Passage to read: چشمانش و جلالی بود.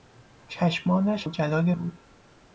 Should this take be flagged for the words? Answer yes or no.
no